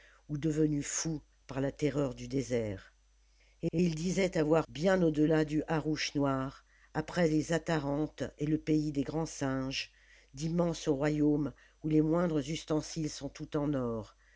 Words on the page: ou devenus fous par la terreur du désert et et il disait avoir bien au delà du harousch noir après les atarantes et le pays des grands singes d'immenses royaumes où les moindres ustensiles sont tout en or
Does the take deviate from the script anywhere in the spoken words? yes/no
no